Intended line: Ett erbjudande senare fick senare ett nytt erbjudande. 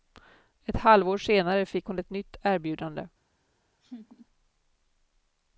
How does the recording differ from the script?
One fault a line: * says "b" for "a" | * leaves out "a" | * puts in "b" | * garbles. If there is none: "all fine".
* says "halvår" for "erbjudande"
* says "hon" for "senare"